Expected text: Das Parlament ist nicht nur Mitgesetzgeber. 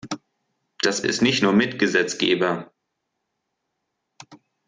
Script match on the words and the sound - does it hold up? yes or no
no